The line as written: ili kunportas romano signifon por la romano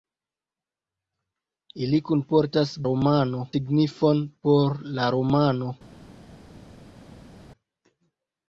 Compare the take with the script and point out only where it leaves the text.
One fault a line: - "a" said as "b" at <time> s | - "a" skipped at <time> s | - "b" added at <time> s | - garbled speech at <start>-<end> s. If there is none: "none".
none